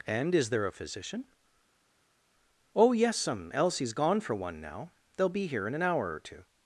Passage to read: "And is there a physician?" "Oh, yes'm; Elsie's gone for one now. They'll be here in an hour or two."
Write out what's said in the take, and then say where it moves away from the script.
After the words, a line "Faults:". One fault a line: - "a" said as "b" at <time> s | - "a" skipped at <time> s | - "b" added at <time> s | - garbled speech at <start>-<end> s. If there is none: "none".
"And is there a physician?" "Oh, yes'm; Elsie's gone for one now. They'll be here in an hour or two."
Faults:
none